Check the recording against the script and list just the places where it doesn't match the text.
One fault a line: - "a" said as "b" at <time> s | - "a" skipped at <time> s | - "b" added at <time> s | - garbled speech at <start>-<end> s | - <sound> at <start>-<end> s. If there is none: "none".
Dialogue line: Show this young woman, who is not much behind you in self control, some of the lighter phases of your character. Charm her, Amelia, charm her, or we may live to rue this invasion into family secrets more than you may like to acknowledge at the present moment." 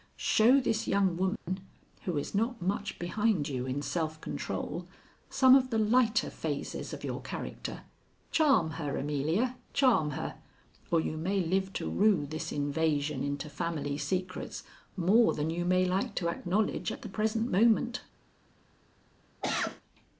- dropout at 1.4-1.5 s
- "we" said as "you" at 11.0 s
- cough at 19.4-19.8 s